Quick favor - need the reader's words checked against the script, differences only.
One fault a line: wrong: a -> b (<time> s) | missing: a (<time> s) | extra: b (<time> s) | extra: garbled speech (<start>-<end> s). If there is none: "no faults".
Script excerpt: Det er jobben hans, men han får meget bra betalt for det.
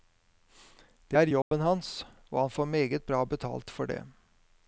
wrong: men -> og (2.3 s)